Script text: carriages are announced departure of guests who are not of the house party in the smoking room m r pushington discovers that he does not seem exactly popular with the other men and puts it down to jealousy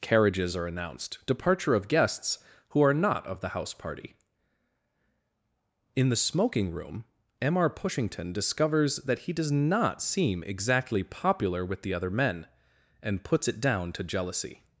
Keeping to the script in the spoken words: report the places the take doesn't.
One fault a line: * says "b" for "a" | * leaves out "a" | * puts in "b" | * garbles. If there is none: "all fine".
all fine